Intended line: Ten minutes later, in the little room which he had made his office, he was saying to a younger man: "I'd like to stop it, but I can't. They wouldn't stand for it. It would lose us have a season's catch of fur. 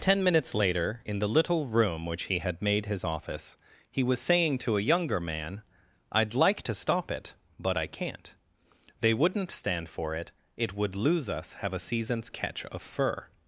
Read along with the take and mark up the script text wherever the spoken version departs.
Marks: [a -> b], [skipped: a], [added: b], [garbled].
Ten minutes later, in the little room which he had made his office, he was saying to a younger man: "I'd like to stop it, but I can't. They wouldn't stand for it. It would lose us have a season's catch of fur.